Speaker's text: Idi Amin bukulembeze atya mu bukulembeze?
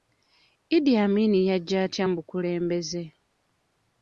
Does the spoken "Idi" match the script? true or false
true